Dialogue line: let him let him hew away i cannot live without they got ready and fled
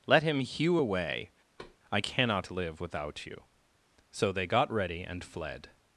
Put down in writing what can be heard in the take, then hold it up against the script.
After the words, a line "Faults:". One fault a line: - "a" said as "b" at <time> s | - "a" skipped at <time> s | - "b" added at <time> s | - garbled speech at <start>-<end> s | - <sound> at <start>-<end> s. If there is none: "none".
let him hew away i cannot live without you so they got ready and fled
Faults:
- "let him" skipped at 0.4 s
- thud at 1.6-1.8 s
- "you so" added at 3.3 s